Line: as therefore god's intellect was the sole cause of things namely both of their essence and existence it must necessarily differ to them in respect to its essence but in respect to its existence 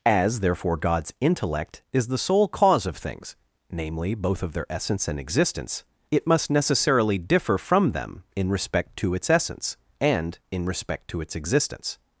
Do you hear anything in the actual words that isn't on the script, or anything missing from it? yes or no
yes